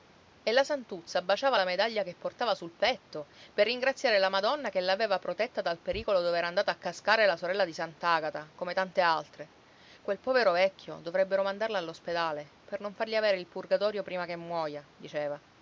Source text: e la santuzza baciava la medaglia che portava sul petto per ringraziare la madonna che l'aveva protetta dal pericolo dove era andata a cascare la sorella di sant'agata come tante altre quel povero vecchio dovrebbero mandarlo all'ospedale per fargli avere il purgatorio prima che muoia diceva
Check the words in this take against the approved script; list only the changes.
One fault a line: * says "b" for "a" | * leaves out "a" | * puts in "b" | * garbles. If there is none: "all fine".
* puts in "non"